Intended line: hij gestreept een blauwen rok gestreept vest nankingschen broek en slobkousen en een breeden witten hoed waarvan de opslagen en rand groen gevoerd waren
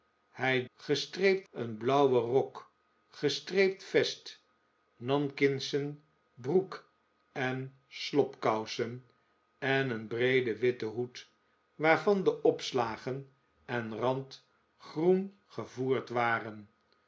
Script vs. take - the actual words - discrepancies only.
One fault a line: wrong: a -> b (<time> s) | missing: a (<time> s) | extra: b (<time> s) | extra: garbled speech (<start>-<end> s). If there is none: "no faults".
no faults